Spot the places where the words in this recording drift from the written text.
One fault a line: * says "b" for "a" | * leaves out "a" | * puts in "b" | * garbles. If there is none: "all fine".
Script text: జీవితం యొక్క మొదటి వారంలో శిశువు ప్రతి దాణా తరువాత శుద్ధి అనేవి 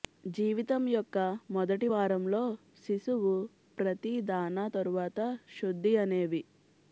all fine